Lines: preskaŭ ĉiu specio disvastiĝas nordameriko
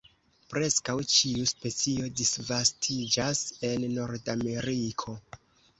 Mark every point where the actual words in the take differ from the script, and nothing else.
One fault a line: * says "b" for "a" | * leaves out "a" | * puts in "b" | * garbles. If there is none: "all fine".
* puts in "en"